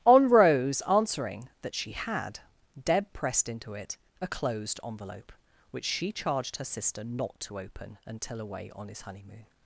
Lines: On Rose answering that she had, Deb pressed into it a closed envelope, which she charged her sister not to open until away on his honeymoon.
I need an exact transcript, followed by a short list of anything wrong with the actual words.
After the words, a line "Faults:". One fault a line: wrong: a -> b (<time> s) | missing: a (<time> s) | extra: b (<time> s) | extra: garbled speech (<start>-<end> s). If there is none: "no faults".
On Rose answering that she had, Deb pressed into it a closed envelope, which she charged her sister not to open until away on his honeymoon.
Faults:
no faults